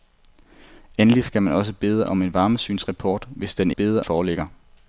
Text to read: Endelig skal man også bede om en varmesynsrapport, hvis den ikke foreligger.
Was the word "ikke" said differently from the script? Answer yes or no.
yes